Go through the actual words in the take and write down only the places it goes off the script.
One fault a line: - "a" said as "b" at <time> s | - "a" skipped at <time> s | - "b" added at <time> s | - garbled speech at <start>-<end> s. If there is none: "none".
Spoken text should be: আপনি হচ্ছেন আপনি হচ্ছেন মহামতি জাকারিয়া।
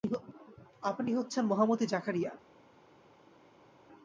- "আপনি হচ্ছেন" skipped at 1.4 s